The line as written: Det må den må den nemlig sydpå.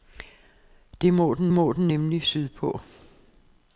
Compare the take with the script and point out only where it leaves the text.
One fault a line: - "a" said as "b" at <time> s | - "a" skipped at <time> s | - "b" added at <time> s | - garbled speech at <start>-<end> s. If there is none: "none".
none